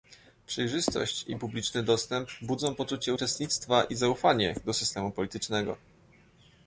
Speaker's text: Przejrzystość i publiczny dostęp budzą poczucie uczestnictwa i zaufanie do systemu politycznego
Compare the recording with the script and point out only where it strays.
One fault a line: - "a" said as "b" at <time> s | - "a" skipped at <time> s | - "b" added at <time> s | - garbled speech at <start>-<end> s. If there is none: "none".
none